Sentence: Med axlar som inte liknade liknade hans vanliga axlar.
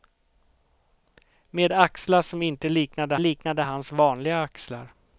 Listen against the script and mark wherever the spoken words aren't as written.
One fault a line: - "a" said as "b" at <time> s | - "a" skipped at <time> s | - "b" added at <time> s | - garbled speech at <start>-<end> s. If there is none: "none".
none